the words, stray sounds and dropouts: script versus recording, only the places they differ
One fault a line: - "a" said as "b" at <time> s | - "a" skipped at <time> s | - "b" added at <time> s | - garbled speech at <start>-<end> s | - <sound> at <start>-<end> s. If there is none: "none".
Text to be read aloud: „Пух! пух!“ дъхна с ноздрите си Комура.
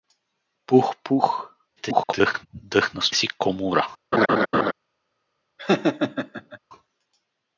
- garbled speech at 1.8-2.5 s
- "ноздрите" skipped at 3.1 s
- laugh at 4.1-4.7 s
- laugh at 5.6-6.6 s